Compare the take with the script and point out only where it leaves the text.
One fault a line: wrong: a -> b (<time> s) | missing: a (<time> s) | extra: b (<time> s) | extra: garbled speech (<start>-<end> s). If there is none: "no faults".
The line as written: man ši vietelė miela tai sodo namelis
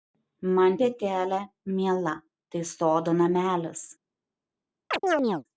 missing: ši (0.8 s)